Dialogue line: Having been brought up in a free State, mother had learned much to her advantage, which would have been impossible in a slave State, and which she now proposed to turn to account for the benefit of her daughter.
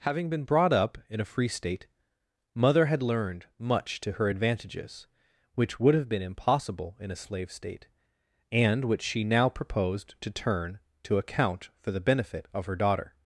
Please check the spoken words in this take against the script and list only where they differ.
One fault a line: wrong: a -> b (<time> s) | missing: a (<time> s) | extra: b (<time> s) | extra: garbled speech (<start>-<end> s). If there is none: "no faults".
wrong: advantage -> advantages (4.3 s)